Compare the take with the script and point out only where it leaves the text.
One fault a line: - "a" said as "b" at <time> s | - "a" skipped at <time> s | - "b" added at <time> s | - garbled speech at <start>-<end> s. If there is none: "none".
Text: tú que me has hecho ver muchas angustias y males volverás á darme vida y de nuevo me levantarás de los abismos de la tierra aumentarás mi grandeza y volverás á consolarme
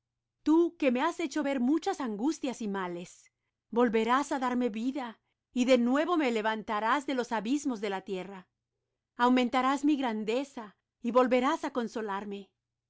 none